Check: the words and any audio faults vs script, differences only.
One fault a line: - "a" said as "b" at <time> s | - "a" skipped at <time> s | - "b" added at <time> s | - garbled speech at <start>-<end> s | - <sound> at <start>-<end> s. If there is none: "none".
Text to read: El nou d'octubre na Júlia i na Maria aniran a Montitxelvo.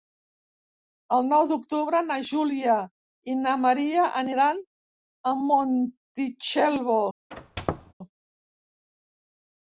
- squeak at 7.3-7.9 s